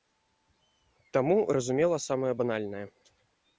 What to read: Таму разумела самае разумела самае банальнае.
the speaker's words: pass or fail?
fail